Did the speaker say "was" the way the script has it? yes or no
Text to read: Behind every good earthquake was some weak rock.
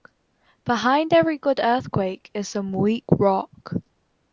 no